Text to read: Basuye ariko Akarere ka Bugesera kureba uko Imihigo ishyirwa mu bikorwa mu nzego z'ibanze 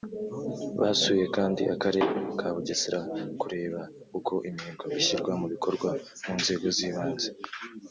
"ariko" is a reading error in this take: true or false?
true